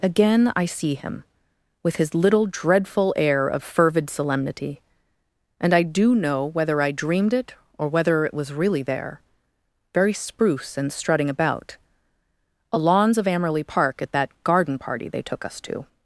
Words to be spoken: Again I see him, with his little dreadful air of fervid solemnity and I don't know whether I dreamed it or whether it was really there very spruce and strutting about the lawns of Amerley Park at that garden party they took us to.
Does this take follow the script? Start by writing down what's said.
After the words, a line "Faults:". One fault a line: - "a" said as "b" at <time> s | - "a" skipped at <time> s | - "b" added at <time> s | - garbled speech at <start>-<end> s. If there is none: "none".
Again I see him, with his little dreadful air of fervid solemnity and I do know whether I dreamed it or whether it was really there very spruce and strutting about a lawns of Amerley Park at that garden party they took us to.
Faults:
- "don't" said as "do" at 5.8 s
- "the" said as "a" at 12.7 s